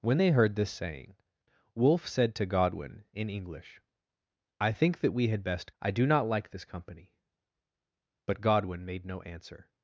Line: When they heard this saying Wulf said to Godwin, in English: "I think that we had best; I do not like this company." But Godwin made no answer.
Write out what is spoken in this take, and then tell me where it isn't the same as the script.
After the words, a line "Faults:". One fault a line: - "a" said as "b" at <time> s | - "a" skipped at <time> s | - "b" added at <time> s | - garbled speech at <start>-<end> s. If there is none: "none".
When they heard this saying Wulf said to Godwin, in English: "I think that we had best; I do not like this company." But Godwin made no answer.
Faults:
none